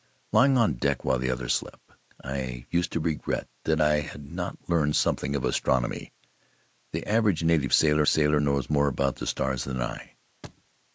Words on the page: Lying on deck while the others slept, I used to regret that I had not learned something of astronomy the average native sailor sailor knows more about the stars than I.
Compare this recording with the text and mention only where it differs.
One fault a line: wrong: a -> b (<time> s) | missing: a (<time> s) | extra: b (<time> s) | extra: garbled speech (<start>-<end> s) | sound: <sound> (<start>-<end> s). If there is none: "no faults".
sound: thud (10.4-10.7 s)